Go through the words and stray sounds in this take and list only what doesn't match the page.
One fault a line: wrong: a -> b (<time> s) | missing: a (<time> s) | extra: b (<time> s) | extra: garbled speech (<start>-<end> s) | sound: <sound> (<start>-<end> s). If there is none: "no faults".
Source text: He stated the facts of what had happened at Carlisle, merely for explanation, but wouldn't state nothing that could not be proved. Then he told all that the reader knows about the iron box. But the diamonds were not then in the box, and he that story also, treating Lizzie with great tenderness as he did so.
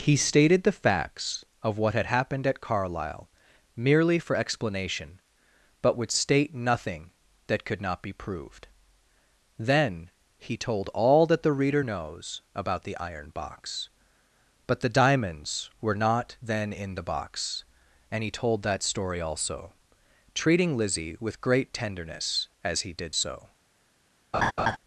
wrong: wouldn't -> would (6.0 s)
extra: told (18.3 s)
sound: laugh (24.3-24.8 s)